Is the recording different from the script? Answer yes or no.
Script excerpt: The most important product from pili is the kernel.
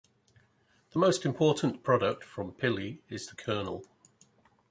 no